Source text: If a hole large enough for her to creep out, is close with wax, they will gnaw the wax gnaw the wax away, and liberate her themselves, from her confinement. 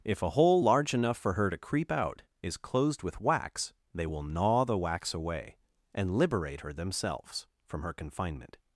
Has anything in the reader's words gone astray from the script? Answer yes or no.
yes